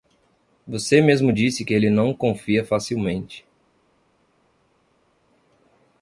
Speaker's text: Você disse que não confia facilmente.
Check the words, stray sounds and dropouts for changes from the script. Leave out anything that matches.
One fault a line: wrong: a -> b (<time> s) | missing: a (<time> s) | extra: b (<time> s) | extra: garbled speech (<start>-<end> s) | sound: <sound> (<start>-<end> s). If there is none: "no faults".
extra: mesmo (1.0 s)
extra: ele (1.7 s)